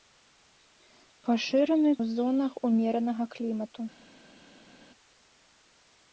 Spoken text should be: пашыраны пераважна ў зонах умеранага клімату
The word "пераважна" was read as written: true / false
false